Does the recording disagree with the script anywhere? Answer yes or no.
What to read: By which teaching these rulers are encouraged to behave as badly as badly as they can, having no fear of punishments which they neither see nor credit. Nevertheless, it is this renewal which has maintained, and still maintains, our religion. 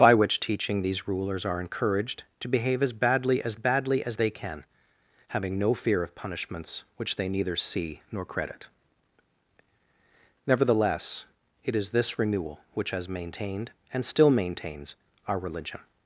no